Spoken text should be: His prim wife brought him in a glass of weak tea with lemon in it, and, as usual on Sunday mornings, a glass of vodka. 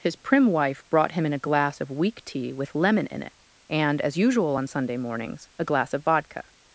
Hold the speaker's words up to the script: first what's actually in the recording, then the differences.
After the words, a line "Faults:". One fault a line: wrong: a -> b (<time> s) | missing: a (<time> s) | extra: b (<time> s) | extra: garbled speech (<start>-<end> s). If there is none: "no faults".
His prim wife brought him in a glass of weak tea with lemon in it, and, as usual on Sunday mornings, a glass of vodka.
Faults:
no faults